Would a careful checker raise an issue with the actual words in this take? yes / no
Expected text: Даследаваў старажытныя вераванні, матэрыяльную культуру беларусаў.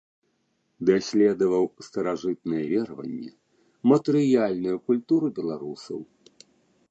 no